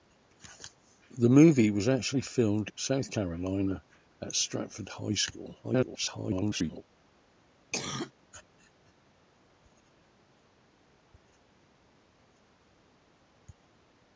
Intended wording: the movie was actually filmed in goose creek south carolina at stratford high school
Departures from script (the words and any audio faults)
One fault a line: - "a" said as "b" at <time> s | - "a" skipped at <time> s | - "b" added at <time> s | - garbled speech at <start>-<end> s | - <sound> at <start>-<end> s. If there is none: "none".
- "in goose creek" skipped at 2.7 s
- garbled speech at 5.6-6.8 s
- cough at 7.7-8.1 s